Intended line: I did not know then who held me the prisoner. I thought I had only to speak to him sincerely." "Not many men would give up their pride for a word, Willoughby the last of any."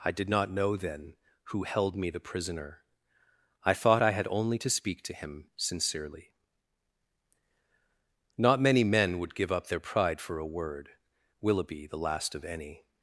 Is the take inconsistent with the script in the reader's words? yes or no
no